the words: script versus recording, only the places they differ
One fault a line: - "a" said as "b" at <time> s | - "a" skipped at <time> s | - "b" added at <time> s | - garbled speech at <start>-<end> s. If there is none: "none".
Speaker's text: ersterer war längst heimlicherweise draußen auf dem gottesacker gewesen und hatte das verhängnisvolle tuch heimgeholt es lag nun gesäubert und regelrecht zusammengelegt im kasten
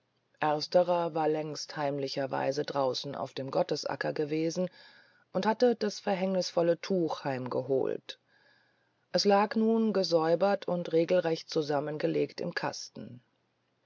none